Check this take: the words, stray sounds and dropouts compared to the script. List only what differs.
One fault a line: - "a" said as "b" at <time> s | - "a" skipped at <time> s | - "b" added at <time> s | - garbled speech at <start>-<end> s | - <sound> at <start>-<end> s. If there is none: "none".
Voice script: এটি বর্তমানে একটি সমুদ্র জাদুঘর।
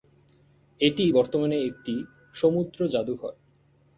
none